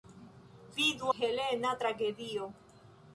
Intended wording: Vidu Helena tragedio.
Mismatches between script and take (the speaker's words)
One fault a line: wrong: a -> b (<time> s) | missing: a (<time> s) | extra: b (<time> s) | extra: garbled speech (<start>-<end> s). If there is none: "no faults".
no faults